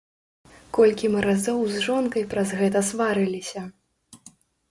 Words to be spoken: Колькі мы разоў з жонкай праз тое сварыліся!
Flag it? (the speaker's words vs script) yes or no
yes